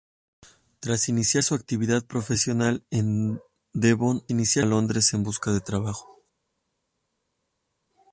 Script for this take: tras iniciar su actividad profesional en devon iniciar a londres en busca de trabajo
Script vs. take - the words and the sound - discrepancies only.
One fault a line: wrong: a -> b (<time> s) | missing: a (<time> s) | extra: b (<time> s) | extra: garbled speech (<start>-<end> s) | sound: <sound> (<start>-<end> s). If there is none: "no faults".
no faults